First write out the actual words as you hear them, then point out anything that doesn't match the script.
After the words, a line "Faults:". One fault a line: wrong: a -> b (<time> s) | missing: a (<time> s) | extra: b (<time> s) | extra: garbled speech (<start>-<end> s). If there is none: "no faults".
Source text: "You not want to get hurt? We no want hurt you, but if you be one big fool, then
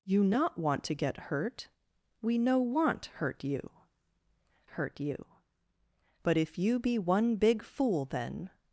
"You not want to get hurt? We no want hurt you hurt you, but if you be one big fool, then
Faults:
extra: hurt you (4.6 s)